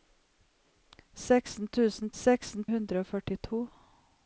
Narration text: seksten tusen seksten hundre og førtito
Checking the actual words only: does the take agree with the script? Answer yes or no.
yes